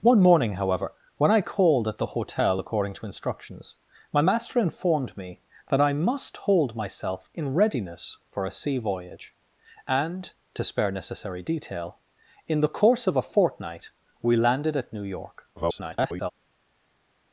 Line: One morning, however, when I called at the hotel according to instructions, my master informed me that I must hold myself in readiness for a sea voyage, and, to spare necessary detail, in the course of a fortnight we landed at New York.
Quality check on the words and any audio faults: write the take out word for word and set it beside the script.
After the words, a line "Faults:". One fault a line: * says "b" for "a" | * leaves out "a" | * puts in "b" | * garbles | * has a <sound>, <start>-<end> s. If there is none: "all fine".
One morning, however, when I called at the hotel according to instructions, my master informed me that I must hold myself in readiness for a sea voyage, and, to spare necessary detail, in the course of a fortnight we landed at New York. [garbled]
Faults:
* garbles